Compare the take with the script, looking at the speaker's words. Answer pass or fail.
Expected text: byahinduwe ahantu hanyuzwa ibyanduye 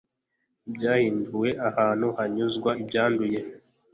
pass